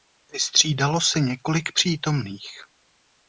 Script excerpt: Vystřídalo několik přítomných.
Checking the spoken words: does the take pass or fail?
fail